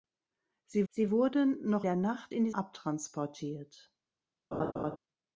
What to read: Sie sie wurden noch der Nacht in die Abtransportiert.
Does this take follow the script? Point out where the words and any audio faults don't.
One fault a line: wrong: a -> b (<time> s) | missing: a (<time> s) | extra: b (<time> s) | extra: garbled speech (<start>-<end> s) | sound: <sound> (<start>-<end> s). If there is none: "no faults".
sound: laugh (4.5-5.0 s)